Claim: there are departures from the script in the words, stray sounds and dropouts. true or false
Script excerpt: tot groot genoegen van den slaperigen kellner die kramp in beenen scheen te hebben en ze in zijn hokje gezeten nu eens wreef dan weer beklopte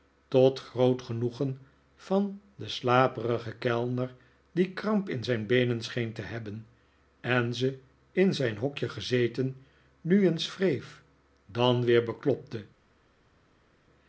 true